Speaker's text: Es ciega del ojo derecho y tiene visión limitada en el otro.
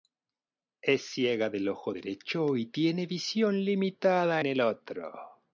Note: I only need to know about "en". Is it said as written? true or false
false